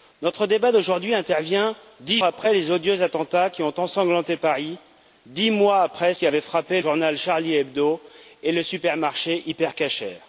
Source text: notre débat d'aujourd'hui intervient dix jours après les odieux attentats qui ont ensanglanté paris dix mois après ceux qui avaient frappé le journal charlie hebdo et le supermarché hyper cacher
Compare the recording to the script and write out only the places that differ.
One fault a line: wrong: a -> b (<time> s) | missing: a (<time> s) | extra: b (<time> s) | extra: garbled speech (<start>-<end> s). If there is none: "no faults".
missing: jours (2.2 s)
missing: ceux (6.1 s)
missing: le (6.8 s)